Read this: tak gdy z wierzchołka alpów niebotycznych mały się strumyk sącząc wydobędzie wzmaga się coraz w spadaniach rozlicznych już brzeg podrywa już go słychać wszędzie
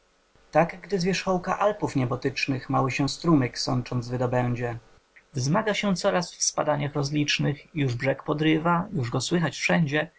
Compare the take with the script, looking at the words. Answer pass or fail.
pass